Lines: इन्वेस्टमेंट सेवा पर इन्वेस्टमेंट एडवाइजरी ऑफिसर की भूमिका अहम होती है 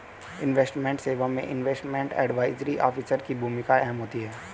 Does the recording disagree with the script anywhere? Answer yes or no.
yes